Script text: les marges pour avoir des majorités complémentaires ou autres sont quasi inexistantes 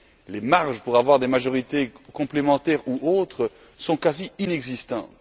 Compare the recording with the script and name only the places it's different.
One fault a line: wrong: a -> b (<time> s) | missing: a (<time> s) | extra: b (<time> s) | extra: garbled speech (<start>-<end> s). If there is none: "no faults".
no faults